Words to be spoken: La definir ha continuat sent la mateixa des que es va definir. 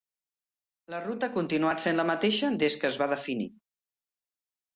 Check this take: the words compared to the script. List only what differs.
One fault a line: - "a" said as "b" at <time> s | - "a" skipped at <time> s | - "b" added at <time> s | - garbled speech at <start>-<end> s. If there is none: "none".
- "definir" said as "ruta" at 1.0 s